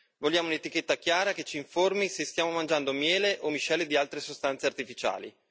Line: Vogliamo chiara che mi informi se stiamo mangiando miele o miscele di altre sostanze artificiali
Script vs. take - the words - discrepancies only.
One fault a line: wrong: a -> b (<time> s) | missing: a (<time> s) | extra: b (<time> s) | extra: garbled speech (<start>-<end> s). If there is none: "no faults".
extra: un'etichetta (0.5 s)
wrong: mi -> ci (1.4 s)